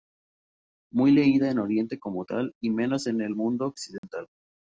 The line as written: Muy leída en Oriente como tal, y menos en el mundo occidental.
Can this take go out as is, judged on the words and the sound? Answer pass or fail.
fail